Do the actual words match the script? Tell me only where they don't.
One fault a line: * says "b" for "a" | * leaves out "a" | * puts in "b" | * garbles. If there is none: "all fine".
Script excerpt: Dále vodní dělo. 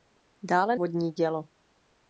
all fine